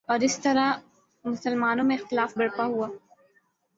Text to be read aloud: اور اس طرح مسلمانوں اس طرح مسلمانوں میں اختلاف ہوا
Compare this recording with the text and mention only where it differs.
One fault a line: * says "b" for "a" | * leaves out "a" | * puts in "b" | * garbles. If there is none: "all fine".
* leaves out "اس طرح مسلمانوں"
* puts in "برپا"